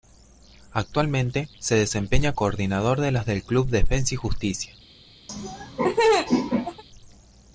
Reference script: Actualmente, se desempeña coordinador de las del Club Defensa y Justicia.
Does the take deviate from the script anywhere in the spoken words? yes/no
no